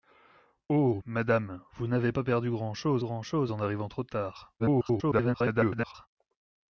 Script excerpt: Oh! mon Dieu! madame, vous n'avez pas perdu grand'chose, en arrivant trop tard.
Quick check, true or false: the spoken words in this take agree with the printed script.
false